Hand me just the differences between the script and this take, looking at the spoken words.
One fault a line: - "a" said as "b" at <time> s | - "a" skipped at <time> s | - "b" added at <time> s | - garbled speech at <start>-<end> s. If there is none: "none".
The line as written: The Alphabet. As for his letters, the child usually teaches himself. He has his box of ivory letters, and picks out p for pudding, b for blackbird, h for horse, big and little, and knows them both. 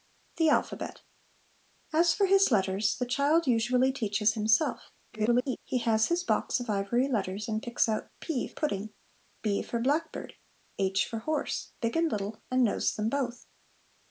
- garbled speech at 5.1-5.6 s
- "for" skipped at 8.5 s